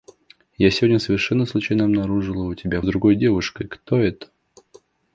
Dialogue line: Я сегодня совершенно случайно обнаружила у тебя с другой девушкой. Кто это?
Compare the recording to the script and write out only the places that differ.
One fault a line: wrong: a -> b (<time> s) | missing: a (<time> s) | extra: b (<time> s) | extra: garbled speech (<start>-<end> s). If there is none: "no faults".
no faults